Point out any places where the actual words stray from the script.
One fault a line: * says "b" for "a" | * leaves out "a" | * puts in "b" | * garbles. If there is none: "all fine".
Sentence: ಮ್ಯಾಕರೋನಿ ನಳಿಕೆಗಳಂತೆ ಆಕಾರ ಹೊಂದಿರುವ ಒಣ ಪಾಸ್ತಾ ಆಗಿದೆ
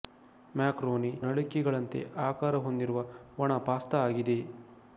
all fine